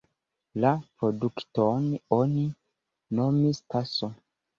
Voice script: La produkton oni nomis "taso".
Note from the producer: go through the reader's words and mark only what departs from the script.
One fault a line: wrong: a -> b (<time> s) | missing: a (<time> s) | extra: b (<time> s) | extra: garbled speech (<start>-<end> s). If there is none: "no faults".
no faults